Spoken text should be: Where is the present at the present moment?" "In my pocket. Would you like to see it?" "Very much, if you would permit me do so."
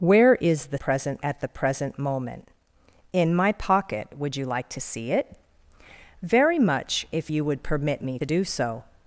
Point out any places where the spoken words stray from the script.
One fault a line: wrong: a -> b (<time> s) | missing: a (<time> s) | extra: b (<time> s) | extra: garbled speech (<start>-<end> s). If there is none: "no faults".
no faults